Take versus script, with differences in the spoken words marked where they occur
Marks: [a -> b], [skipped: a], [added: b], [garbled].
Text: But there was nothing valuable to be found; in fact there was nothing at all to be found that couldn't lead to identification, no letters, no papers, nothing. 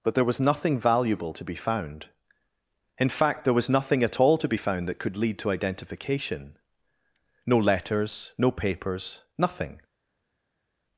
But there was nothing valuable to be found; in fact there was nothing at all to be found that [couldn't -> could] lead to identification, no letters, no papers, nothing.